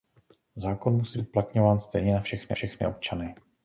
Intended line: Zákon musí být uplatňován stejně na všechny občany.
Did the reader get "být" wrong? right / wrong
wrong